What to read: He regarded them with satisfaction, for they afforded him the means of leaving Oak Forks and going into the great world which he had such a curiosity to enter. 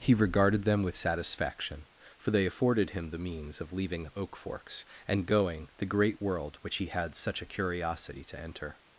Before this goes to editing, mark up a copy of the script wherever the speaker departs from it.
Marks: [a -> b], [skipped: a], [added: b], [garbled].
He regarded them with satisfaction, for they afforded him the means of leaving Oak Forks and going [skipped: into] the great world which he had such a curiosity to enter.